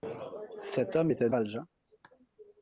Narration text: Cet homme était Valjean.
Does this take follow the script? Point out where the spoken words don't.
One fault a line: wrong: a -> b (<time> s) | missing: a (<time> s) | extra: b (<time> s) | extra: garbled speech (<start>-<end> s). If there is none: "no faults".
no faults